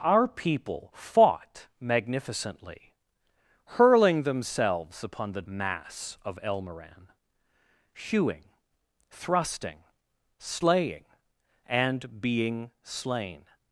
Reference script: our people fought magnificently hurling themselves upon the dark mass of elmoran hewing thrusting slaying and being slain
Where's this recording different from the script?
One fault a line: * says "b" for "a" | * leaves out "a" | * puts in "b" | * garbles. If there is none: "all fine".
* leaves out "dark"